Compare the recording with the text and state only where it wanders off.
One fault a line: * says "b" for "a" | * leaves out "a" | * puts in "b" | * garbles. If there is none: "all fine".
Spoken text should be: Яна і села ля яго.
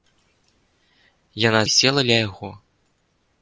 all fine